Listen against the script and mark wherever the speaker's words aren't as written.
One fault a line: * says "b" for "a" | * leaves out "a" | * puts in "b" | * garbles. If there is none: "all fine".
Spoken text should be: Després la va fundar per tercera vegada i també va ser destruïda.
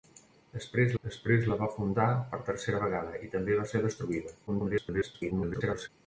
* puts in "després"
* garbles